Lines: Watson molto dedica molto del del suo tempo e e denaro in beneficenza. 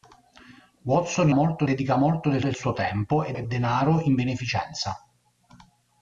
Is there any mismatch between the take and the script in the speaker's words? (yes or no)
no